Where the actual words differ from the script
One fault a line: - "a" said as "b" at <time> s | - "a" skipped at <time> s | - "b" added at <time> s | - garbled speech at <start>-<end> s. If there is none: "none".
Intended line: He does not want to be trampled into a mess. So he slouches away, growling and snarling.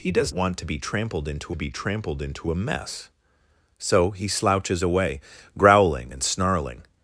- "not" skipped at 0.3 s
- "be trampled into" added at 1.6 s